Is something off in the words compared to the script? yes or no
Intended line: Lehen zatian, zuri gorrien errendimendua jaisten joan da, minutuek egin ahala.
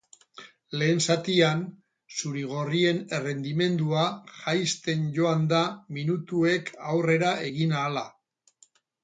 yes